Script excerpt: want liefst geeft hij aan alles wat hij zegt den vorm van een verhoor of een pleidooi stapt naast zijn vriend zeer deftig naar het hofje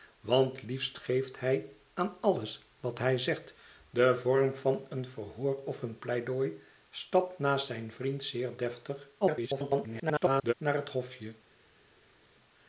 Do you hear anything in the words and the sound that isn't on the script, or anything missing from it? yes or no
yes